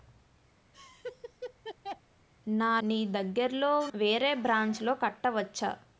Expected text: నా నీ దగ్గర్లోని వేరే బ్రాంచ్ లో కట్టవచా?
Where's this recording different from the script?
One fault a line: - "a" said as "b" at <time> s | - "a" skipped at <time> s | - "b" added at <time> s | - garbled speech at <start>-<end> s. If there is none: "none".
none